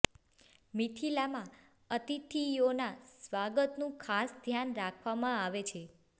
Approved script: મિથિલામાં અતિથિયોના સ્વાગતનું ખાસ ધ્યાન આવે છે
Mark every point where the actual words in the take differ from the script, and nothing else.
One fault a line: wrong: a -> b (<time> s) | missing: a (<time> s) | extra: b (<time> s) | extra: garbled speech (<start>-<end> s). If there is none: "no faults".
extra: રાખવામાં (4.8 s)